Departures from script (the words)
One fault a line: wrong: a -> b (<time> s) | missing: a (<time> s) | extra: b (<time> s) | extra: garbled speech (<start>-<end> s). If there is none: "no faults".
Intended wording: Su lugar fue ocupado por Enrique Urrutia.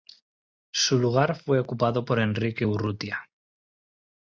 no faults